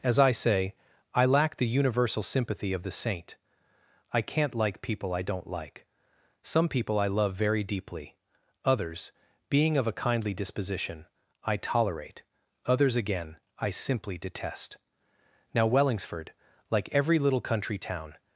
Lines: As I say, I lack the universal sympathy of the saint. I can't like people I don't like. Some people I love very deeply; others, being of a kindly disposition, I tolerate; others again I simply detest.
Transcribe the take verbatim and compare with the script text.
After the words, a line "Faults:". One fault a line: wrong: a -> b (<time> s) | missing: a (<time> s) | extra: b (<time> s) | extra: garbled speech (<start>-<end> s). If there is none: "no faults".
As I say, I lack the universal sympathy of the saint. I can't like people I don't like. Some people I love very deeply; others, being of a kindly disposition, I tolerate; others again I simply detest. Now Wellingsford, like every little country town
Faults:
extra: Now Wellingsford like every little country town (15.5 s)